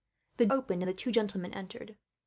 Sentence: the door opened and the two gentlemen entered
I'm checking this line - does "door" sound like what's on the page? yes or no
no